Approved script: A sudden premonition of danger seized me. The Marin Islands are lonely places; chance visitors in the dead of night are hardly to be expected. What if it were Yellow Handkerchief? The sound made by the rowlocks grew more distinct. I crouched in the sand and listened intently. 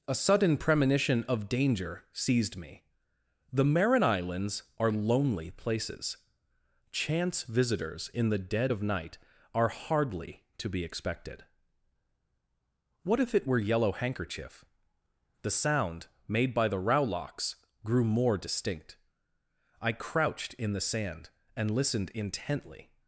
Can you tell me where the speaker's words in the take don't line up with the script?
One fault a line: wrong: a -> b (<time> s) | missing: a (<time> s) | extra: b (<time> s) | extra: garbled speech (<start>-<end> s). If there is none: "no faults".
no faults